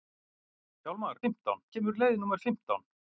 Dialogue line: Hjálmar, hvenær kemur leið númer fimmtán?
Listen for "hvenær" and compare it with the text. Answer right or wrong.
wrong